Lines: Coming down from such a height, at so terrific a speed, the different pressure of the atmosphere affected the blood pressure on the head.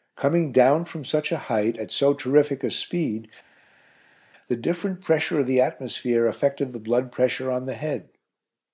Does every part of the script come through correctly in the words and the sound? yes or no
yes